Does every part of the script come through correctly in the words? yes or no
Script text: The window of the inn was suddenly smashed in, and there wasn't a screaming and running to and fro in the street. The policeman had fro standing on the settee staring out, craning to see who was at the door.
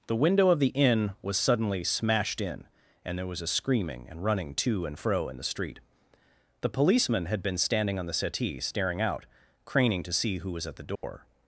no